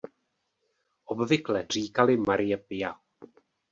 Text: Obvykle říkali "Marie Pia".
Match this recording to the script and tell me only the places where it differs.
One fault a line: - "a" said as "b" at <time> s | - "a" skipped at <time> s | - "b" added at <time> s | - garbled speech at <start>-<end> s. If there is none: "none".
none